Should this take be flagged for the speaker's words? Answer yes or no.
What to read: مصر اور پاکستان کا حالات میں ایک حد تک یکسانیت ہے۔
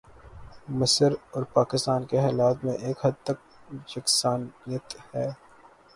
yes